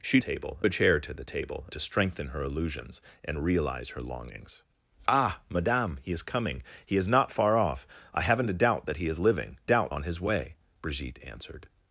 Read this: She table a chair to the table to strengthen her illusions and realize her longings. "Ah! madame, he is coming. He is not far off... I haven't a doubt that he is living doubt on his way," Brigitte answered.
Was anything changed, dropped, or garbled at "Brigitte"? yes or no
no